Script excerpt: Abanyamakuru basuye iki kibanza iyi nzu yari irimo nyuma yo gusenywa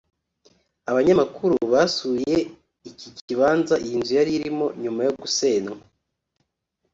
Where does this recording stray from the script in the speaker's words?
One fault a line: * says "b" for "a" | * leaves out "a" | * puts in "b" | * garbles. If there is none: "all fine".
all fine